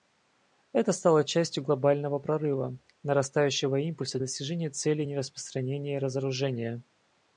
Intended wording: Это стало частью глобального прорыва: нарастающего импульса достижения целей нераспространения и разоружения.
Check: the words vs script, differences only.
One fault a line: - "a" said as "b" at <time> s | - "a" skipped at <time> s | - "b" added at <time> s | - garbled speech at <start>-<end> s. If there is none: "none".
none